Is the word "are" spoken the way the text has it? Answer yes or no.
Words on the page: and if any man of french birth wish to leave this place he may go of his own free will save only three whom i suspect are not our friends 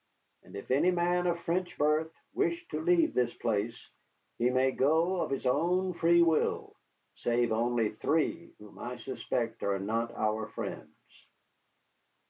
yes